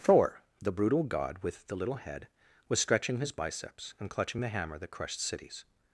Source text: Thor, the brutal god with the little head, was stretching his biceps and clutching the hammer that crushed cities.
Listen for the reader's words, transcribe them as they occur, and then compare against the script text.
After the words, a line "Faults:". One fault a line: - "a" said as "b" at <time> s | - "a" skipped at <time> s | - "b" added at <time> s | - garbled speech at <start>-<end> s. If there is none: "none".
Thor, the brutal god with the little head, was stretching his biceps and clutching the hammer that crushed cities.
Faults:
none